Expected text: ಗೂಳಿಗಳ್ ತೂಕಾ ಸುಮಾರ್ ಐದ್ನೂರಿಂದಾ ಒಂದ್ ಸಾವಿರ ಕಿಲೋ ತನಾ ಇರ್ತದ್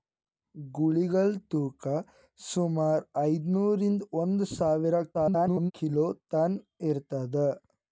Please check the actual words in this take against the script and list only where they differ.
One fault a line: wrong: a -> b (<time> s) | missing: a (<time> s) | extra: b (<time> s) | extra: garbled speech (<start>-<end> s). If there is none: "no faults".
extra: garbled speech (5.1-5.7 s)